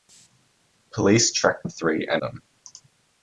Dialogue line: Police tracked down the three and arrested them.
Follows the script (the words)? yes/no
no